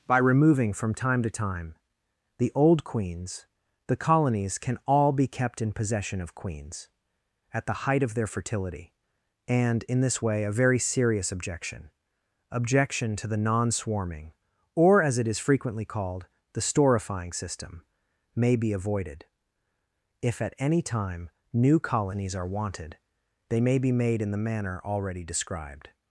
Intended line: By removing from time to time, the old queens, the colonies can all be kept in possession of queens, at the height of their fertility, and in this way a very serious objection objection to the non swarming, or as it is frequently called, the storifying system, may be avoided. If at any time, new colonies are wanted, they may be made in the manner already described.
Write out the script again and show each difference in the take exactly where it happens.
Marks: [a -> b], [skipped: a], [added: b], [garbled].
By removing from time to time, the old queens, the colonies can all be kept in possession of queens, at the height of their fertility, and in this way a very serious objection objection to the non swarming, or as it is frequently called, the storifying system, may be avoided. If at any time, new colonies are wanted, they may be made in the manner already described.